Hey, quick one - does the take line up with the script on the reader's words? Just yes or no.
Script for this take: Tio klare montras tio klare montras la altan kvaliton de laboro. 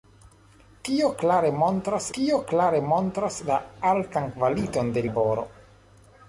yes